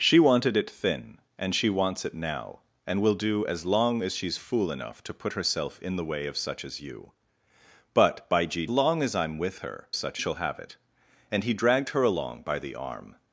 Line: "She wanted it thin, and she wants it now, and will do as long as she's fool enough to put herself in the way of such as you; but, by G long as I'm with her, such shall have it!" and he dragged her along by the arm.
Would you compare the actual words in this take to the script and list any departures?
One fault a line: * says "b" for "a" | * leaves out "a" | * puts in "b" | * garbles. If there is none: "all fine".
all fine